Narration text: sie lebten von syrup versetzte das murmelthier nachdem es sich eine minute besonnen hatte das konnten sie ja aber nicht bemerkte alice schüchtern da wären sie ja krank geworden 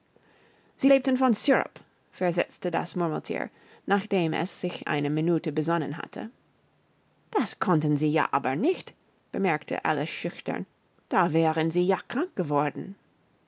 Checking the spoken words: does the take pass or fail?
pass